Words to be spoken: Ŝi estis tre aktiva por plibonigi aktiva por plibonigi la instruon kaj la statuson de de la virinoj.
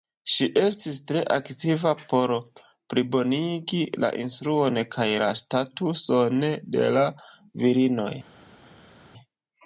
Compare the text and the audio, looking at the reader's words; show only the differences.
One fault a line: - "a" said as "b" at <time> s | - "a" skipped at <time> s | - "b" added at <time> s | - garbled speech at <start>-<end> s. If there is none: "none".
- "aktiva por plibonigi" skipped at 3.8 s
- "de" skipped at 6.9 s